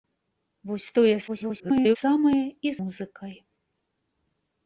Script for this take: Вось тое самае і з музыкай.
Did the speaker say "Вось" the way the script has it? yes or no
yes